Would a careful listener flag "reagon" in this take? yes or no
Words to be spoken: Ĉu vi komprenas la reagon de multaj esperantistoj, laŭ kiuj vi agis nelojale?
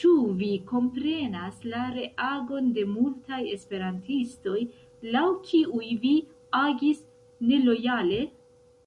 no